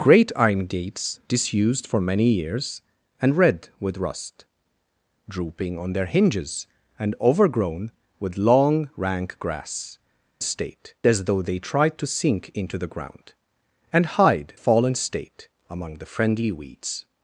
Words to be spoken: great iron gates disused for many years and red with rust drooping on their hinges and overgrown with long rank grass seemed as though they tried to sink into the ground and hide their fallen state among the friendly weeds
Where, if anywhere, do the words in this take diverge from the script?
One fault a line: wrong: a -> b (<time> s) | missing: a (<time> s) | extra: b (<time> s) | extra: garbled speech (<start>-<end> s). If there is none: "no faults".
wrong: seemed -> state (10.4 s)
missing: their (14.5 s)